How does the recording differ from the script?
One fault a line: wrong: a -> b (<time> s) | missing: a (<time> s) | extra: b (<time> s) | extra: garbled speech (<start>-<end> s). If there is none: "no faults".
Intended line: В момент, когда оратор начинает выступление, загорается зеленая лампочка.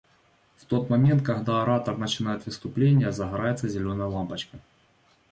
extra: тот (0.7 s)